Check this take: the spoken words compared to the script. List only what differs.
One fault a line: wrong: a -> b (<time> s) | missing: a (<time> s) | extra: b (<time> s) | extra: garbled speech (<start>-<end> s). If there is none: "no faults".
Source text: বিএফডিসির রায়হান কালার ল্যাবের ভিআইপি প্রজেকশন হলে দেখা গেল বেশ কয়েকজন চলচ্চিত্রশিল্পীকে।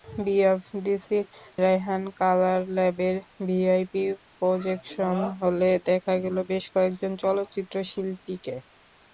no faults